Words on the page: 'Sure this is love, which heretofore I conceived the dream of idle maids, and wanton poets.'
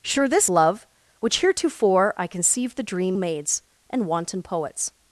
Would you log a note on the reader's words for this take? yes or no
yes